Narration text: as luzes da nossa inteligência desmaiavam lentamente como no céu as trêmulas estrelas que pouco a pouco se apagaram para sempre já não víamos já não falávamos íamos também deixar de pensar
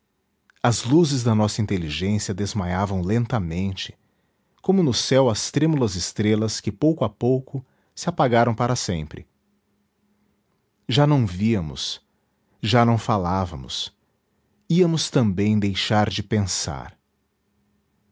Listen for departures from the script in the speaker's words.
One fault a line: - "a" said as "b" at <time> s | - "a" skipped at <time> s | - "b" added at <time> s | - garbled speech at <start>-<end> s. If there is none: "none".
none